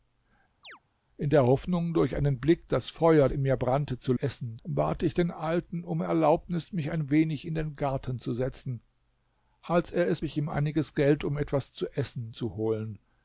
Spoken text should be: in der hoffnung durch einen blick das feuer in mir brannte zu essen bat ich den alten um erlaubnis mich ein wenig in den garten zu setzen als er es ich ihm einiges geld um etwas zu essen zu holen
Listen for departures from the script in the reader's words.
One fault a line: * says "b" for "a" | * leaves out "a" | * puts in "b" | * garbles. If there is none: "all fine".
all fine